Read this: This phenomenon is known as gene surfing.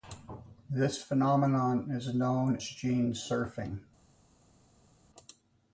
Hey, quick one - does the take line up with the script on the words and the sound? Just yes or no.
no